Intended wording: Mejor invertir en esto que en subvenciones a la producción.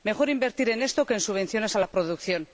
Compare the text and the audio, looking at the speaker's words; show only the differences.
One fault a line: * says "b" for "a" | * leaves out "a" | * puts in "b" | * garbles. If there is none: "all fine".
all fine